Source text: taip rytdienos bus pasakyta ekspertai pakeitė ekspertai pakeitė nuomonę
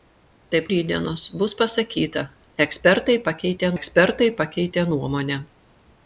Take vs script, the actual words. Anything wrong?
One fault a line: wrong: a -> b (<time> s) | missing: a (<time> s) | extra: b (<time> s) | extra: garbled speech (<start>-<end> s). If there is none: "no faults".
no faults